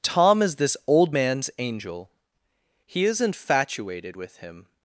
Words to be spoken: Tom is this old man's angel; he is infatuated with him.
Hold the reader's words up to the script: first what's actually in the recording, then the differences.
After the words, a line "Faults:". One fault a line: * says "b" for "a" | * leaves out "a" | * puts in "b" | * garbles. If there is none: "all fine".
Tom is this old man's angel; he is infatuated with him.
Faults:
all fine